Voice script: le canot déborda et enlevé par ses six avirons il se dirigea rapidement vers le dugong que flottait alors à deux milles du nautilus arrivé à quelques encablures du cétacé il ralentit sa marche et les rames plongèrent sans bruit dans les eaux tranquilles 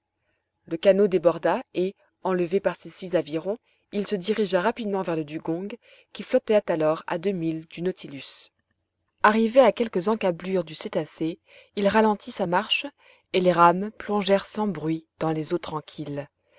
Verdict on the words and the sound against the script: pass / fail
fail